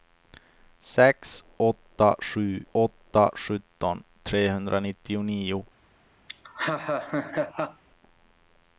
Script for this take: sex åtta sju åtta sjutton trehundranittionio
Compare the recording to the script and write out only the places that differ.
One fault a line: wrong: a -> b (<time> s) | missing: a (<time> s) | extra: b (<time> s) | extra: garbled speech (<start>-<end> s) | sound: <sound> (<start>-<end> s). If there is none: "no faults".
sound: laugh (6.3-7.8 s)